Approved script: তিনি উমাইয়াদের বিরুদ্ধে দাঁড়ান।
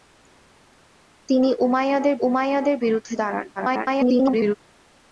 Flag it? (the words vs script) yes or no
yes